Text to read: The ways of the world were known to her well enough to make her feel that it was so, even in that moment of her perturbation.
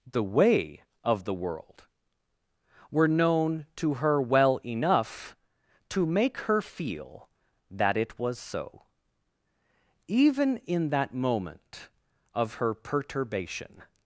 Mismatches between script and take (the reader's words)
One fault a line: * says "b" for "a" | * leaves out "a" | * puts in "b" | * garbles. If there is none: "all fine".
* says "way" for "ways"